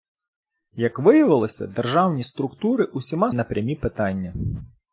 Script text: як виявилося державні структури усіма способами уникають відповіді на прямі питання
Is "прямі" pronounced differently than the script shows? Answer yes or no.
no